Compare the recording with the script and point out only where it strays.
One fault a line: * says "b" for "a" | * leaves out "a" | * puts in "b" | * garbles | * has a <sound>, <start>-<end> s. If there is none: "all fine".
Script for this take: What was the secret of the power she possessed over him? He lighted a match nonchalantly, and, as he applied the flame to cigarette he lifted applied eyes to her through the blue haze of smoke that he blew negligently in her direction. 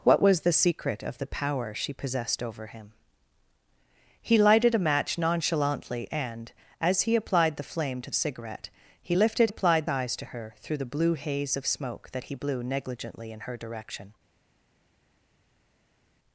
all fine